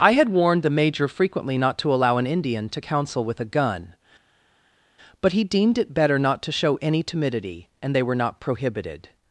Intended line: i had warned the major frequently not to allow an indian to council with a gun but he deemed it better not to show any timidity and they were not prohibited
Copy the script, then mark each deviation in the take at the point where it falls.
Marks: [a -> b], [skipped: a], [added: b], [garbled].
i had warned the major frequently not to allow an indian to council with a gun but he deemed it better not to show any timidity and they were not prohibited